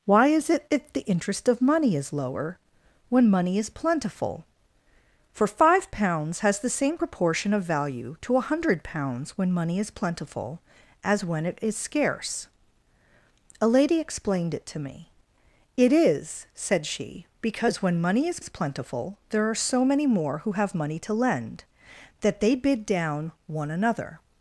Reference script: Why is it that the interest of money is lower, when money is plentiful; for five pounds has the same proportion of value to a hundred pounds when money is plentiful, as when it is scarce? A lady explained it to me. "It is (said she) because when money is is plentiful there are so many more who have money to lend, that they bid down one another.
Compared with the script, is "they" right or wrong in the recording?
right